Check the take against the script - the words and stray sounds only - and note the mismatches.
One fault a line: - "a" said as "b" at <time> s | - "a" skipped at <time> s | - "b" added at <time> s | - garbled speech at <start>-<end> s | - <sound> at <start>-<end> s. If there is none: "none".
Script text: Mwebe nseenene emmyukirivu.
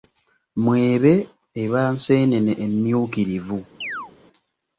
- "eba" added at 1.6 s
- chirp at 3.8-4.1 s